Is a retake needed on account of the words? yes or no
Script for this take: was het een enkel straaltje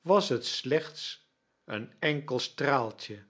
yes